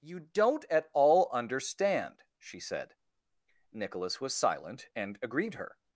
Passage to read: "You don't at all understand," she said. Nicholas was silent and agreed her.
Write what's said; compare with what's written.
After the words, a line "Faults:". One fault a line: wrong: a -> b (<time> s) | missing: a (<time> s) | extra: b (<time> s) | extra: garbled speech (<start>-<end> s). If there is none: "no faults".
"You don't at all understand," she said. Nicholas was silent and agreed her.
Faults:
no faults